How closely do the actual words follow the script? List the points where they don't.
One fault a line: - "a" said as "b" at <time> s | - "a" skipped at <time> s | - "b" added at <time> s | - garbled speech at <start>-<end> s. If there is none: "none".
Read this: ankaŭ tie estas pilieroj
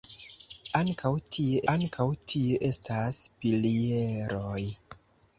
- "ankaŭ tie" added at 1.7 s